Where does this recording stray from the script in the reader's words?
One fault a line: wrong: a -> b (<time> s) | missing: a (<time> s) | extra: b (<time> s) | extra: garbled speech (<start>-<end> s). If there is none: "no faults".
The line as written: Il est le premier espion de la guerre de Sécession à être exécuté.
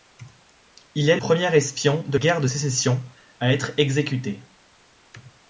missing: le (1.2 s)
missing: la (2.2 s)